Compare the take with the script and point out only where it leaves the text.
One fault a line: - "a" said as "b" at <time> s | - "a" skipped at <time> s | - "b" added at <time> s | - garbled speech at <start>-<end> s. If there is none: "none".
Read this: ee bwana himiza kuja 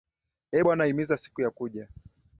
- "siku ya" added at 1.2 s